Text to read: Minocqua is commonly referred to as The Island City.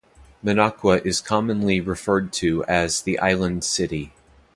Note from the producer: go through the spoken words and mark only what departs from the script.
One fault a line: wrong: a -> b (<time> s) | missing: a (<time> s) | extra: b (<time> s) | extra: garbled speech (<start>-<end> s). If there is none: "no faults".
no faults